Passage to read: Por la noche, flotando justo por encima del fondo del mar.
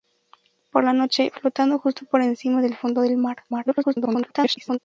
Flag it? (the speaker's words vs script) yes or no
yes